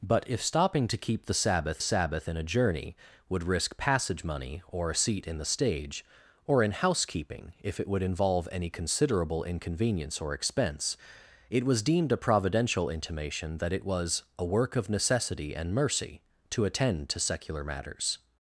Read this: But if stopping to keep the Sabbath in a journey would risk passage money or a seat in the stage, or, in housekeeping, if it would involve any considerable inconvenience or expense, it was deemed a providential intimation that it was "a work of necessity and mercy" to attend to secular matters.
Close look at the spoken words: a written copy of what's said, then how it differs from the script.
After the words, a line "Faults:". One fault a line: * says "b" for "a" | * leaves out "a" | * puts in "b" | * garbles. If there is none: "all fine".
But if stopping to keep the Sabbath Sabbath in a journey would risk passage money or a seat in the stage, or, in housekeeping, if it would involve any considerable inconvenience or expense, it was deemed a providential intimation that it was "a work of necessity and mercy" to attend to secular matters.
Faults:
* puts in "Sabbath"